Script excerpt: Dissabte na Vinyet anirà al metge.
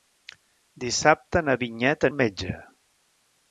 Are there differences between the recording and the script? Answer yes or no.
yes